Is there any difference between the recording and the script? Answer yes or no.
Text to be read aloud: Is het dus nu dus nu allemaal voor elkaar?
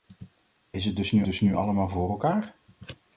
no